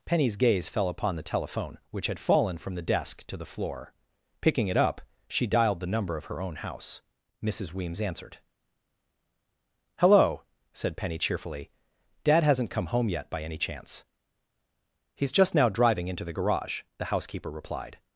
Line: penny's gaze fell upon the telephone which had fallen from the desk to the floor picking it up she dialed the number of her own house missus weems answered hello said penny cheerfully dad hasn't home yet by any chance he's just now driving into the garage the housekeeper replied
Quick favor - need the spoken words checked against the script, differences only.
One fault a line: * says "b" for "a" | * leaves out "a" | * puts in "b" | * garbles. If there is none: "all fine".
* puts in "come"